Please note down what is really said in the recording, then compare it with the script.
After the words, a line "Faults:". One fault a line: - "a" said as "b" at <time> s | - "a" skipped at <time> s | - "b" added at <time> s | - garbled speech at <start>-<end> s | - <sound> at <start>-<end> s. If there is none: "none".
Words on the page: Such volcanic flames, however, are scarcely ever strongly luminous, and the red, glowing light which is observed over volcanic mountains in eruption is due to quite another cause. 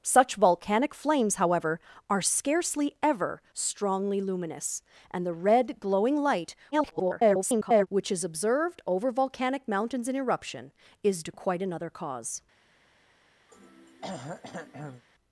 Such volcanic flames, however, are scarcely ever strongly luminous, and the red, glowing light [garbled] which is observed over volcanic mountains in eruption is to quite another cause.
Faults:
- garbled speech at 6.7-7.9 s
- "due" skipped at 11.2 s
- throat clearing at 13.5-15.0 s